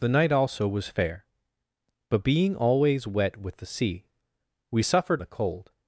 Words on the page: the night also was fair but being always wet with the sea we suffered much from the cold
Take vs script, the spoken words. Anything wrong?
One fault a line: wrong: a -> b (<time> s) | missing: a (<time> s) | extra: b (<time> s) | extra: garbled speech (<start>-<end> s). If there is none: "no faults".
missing: much from (5.2 s)